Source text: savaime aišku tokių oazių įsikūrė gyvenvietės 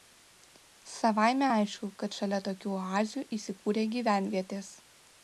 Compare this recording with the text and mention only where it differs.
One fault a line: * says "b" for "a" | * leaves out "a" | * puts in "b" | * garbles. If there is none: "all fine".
* puts in "kad šalia"